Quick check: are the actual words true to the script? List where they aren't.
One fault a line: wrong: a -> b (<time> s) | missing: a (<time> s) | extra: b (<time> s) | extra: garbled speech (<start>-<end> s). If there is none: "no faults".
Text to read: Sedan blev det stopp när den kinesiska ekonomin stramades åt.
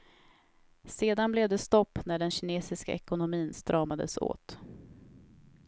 no faults